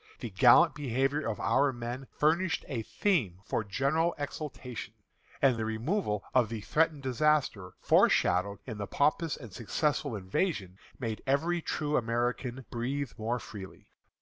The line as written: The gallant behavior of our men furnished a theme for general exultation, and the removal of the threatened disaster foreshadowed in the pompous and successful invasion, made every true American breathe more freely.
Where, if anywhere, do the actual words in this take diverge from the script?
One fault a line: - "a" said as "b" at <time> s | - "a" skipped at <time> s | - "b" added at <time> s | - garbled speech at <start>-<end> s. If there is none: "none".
none